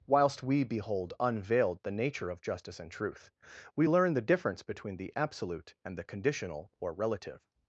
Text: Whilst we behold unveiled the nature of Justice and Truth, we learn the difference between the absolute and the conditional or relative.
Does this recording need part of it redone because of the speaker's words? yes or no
no